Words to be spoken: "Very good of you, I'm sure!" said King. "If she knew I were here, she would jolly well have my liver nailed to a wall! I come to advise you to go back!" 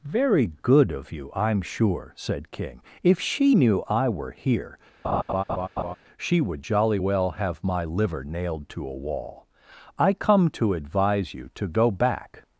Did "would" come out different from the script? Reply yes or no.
no